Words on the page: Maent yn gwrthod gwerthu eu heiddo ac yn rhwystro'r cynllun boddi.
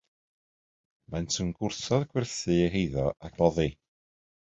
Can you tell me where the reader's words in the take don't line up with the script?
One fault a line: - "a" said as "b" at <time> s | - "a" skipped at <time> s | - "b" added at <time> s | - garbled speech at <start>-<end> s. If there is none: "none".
- "yn rhwystro'r cynllun" skipped at 3.4 s